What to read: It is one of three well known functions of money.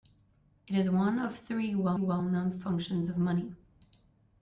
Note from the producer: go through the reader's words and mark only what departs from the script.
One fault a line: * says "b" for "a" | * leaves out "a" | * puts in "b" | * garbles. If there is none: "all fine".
* puts in "well"